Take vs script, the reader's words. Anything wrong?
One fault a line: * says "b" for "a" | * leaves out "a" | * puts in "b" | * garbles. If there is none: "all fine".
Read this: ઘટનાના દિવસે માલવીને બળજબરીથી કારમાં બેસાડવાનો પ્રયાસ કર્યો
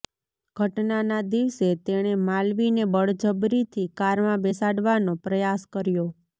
* puts in "તેણે"